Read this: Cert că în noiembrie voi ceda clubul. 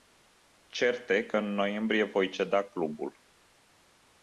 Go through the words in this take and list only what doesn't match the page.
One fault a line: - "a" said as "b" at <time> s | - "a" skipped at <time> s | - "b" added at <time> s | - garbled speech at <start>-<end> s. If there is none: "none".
- "e" added at 1.1 s